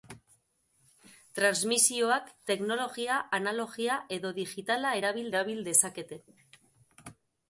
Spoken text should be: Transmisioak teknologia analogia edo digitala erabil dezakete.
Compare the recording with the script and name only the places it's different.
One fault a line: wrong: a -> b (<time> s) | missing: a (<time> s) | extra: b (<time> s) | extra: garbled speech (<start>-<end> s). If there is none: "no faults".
extra: erabil (5.3 s)